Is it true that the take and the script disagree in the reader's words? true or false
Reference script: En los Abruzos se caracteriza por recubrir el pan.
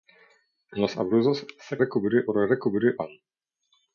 true